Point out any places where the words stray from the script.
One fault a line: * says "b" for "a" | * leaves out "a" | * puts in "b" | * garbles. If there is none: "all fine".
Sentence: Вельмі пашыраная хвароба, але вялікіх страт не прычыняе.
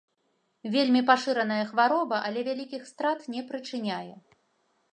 all fine